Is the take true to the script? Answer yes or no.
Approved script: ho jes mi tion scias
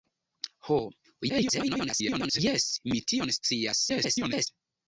no